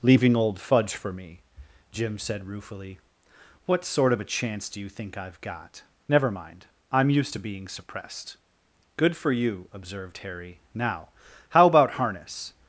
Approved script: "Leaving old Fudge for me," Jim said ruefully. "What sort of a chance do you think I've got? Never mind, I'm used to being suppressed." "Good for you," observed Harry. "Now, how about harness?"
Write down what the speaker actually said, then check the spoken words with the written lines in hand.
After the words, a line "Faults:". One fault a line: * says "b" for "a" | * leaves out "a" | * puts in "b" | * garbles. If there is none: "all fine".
"Leaving old Fudge for me," Jim said ruefully. "What sort of a chance do you think I've got? Never mind, I'm used to being suppressed." "Good for you," observed Harry. "Now, how about harness?"
Faults:
all fine